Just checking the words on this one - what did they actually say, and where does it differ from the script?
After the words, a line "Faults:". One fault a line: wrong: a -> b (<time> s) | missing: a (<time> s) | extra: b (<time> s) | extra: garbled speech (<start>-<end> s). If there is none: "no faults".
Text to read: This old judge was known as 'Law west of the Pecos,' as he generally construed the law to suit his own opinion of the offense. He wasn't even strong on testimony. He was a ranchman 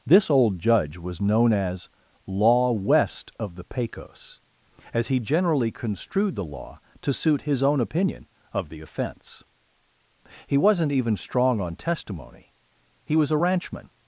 This old judge was known as 'Law west of the Pecos,' as he generally construed the law to suit his own opinion of the offense. He wasn't even strong on testimony. He was a ranchman
Faults:
no faults